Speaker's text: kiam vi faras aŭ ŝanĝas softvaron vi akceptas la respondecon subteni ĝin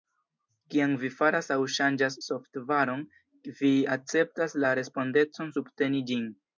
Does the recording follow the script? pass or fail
pass